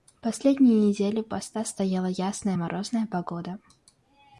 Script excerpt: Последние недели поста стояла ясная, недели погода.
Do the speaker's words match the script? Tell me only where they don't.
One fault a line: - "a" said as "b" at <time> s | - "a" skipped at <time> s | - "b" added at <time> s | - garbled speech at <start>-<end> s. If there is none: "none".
- "недели" said as "морозная" at 2.5 s